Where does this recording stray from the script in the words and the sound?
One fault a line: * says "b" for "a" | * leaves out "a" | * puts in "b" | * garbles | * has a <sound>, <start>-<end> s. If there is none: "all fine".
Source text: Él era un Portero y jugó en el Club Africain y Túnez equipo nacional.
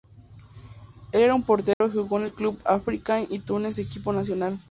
* has a dropout, 1.7-1.8 s